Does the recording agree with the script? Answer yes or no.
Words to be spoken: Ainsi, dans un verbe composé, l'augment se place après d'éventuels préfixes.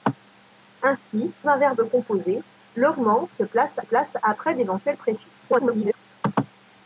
no